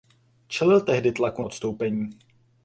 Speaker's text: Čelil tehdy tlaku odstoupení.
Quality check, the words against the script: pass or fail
pass